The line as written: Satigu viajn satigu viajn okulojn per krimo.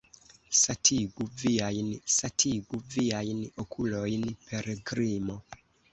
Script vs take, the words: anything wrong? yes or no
no